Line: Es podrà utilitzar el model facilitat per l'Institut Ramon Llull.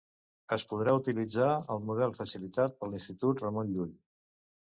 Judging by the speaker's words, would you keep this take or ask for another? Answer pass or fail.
pass